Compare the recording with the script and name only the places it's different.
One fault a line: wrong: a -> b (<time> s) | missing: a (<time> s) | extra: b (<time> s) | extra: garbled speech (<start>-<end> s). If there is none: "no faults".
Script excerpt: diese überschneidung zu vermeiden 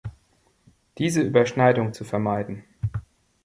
no faults